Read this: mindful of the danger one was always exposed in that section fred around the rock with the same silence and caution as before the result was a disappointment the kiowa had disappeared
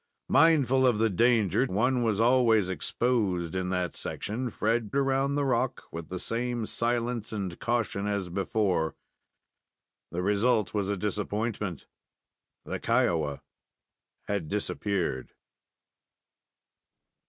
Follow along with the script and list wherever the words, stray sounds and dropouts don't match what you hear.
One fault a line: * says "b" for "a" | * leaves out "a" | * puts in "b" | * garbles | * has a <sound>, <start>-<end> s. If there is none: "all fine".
all fine